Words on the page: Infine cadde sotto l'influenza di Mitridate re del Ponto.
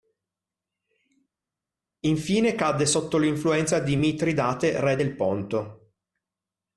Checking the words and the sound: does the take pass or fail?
pass